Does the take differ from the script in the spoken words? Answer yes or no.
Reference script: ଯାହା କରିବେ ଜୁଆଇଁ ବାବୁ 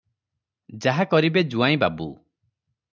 no